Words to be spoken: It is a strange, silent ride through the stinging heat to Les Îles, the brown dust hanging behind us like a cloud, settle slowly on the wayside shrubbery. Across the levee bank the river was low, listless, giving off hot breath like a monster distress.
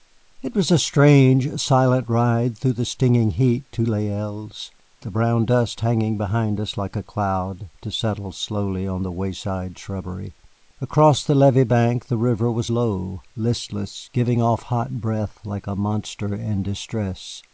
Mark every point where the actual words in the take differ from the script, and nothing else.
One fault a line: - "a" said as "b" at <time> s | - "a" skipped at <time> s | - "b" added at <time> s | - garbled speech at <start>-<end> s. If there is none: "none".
- "is" said as "was" at 0.6 s
- "to" added at 7.8 s
- "in" added at 16.3 s